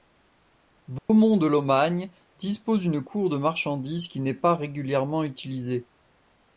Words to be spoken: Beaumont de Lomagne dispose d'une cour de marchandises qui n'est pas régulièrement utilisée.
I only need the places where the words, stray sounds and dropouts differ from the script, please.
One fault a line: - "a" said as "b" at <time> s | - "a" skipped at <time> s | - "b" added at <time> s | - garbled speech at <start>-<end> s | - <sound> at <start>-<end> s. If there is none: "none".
- dropout at 1.0-1.1 s